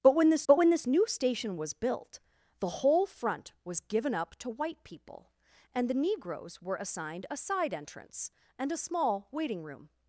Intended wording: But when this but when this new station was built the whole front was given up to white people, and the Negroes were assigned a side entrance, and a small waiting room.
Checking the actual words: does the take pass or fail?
pass